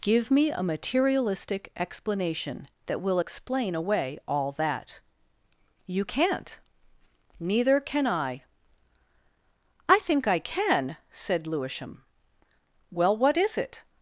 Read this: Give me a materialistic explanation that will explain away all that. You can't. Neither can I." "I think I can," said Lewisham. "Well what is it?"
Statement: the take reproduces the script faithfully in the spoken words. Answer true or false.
true